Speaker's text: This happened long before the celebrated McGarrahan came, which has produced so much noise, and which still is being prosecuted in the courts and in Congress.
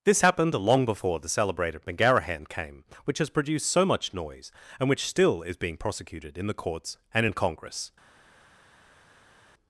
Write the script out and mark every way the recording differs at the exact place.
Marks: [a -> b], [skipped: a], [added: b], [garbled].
This happened long before the celebrated McGarrahan came, which has produced so much noise, and which still is being prosecuted in the courts and in Congress.